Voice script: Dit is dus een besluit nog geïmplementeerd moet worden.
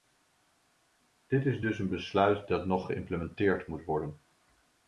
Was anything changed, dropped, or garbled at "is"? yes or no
no